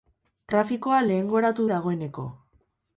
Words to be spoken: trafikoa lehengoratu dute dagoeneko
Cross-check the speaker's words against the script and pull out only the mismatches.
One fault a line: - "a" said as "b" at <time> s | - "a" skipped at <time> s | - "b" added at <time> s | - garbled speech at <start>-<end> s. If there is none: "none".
- "dute" skipped at 1.7 s